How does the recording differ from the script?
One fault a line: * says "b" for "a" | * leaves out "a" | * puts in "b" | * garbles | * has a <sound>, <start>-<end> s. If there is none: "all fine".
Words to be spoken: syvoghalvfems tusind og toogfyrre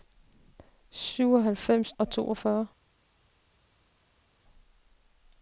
* leaves out "tusind"